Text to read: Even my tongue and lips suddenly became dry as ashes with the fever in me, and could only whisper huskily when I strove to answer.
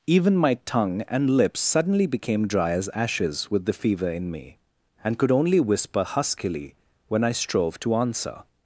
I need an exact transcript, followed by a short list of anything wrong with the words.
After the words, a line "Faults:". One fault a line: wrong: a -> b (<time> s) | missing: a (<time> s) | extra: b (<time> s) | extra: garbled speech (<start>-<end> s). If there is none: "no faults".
Even my tongue and lips suddenly became dry as ashes with the fever in me, and could only whisper huskily when I strove to answer.
Faults:
no faults